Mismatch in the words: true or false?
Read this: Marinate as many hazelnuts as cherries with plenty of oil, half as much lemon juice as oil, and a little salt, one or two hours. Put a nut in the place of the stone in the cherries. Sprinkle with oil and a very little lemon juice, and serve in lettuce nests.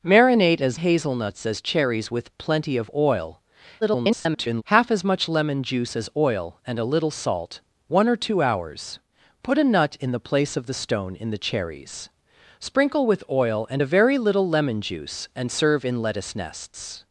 true